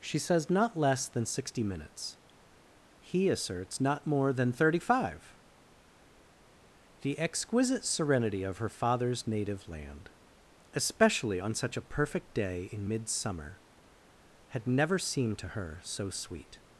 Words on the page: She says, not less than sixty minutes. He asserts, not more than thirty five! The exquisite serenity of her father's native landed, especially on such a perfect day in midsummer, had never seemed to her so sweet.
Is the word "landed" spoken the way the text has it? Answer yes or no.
no